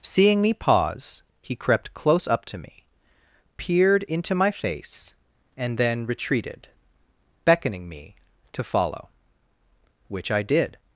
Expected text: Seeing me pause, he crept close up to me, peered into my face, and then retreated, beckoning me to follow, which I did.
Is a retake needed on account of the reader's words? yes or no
no